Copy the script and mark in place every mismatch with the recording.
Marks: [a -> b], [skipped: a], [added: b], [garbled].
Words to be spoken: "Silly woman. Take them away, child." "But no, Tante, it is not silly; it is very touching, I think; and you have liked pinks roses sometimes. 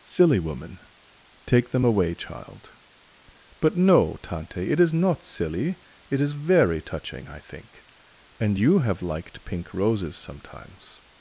"Silly woman. Take them away, child." "But no, Tante, it is not silly; it is very touching, I think; and you have liked [pinks -> pink] roses sometimes.